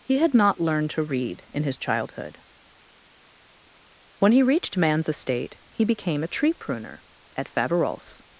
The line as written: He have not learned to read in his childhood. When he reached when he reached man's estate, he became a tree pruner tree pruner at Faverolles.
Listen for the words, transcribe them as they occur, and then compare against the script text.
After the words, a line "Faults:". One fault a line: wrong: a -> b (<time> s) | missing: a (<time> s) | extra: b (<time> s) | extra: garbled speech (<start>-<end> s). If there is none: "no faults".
He had not learned to read in his childhood. When he reached man's estate, he became a tree pruner at Faverolles.
Faults:
wrong: have -> had (0.2 s)
missing: when he reached (4.8 s)
missing: tree pruner (7.0 s)